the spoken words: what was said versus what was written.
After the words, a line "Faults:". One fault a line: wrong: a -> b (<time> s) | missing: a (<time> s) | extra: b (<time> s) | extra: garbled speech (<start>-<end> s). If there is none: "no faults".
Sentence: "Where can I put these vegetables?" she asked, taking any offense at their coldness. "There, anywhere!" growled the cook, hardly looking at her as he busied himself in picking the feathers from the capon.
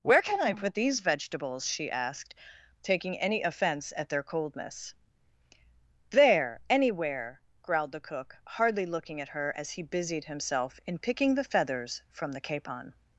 "Where can I put these vegetables?" she asked, taking any offense at their coldness. "There, anywhere!" growled the cook, hardly looking at her as he busied himself in picking the feathers from the capon.
Faults:
no faults